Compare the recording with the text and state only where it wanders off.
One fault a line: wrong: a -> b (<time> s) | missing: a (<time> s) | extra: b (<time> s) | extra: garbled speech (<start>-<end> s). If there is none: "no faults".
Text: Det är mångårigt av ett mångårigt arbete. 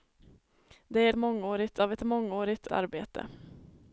no faults